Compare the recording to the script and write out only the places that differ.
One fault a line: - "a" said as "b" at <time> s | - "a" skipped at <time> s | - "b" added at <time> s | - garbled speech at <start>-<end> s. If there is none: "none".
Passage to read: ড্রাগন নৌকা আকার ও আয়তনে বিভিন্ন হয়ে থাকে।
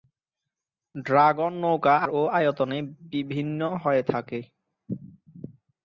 - "আকার" skipped at 1.9 s